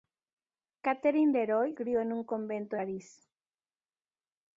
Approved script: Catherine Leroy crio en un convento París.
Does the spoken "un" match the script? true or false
true